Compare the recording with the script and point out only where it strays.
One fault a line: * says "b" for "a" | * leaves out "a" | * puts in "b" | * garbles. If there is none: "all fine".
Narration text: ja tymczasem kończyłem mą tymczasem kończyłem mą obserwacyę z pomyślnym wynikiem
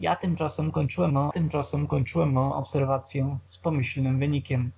all fine